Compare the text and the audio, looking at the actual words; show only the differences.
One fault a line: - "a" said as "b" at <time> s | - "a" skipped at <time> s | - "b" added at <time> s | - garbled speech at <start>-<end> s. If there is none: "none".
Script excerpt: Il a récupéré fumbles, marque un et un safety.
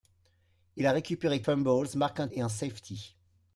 none